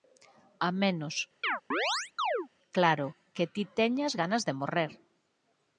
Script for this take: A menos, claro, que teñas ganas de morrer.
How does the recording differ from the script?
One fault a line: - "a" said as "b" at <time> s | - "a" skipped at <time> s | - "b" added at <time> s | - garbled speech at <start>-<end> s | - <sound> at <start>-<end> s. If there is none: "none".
- chirp at 1.4-2.5 s
- "ti" added at 3.5 s